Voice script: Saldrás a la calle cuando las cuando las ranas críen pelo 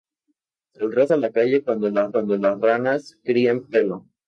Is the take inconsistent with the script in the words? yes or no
no